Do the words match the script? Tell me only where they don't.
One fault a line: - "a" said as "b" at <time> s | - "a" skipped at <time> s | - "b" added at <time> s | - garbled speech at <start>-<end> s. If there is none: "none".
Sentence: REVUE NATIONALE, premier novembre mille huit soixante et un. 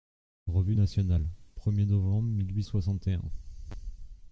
none